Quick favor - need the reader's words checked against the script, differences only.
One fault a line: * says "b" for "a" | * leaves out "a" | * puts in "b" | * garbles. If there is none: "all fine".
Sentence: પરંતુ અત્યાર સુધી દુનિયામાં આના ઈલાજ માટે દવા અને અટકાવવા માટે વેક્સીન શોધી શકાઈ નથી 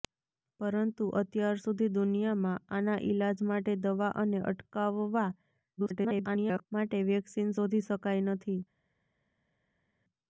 * garbles